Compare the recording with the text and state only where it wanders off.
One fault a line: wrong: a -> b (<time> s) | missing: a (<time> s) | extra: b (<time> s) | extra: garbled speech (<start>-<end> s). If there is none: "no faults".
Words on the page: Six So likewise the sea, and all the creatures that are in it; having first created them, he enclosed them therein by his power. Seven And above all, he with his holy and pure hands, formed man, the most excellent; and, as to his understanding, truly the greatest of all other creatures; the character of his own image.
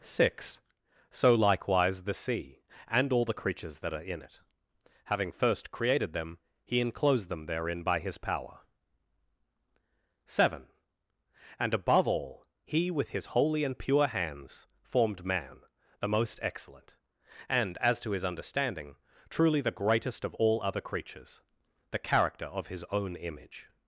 no faults